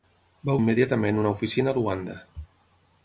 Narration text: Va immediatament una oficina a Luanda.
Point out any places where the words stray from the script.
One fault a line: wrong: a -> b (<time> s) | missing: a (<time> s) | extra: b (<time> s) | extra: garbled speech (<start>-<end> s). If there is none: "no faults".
no faults